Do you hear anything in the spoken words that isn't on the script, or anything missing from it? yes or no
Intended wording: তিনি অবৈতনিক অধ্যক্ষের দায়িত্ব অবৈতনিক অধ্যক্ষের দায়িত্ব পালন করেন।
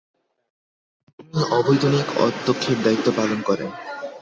yes